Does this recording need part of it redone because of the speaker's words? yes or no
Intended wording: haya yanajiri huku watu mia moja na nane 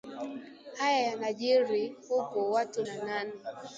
yes